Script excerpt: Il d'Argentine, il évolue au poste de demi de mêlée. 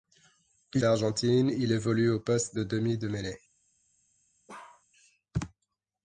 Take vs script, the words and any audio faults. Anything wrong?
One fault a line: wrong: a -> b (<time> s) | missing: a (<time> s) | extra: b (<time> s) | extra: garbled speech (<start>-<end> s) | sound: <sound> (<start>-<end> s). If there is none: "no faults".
sound: bark (4.5-4.8 s)